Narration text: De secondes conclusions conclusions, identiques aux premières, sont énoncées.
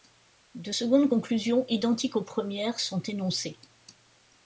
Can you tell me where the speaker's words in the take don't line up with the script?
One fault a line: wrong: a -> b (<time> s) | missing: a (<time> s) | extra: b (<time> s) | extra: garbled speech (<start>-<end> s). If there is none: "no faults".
missing: conclusions (1.6 s)